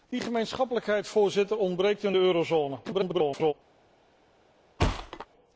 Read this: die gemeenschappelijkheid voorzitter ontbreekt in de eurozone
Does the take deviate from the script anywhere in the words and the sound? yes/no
yes